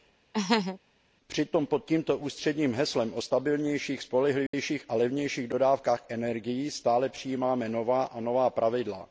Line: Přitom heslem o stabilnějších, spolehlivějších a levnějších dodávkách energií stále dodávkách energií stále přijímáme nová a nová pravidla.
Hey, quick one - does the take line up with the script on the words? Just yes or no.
no